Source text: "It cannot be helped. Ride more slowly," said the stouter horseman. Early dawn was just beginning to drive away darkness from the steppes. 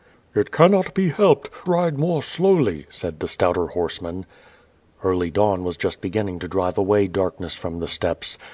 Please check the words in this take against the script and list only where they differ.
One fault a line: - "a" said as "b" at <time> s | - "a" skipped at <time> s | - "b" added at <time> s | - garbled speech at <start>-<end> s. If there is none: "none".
none